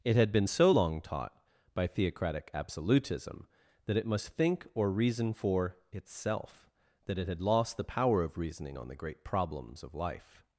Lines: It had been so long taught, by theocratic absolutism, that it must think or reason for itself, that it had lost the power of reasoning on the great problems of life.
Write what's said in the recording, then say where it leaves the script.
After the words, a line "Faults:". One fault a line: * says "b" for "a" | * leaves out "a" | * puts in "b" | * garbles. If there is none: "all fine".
It had been so long taught, by theocratic absolutism, that it must think or reason for itself, that it had lost the power of reasoning on the great problems of life.
Faults:
all fine